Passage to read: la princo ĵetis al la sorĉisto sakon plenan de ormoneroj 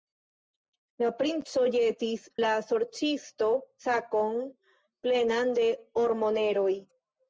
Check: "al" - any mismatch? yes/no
yes